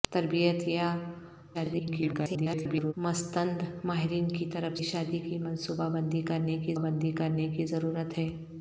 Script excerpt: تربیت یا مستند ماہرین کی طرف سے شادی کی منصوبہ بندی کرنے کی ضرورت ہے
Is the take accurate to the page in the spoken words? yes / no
no